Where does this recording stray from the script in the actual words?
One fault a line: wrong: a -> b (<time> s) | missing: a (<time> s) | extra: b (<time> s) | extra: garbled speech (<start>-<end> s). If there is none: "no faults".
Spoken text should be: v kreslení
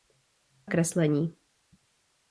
no faults